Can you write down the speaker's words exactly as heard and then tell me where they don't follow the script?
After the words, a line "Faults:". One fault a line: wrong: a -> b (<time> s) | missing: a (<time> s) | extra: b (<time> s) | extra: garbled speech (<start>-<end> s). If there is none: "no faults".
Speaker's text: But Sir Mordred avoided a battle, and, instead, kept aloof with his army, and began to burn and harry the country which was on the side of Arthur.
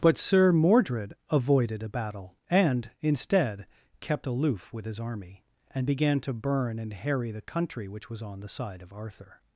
But Sir Mordred avoided a battle, and, instead, kept aloof with his army, and began to burn and harry the country which was on the side of Arthur.
Faults:
no faults